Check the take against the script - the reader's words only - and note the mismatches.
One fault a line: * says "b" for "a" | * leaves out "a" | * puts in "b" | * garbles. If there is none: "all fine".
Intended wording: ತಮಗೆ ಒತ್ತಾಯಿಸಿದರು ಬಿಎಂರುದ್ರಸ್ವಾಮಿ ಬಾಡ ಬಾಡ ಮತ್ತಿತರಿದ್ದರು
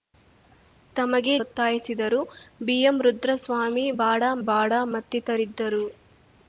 all fine